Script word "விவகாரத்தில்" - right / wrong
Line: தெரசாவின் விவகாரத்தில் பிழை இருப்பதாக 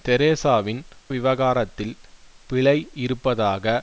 right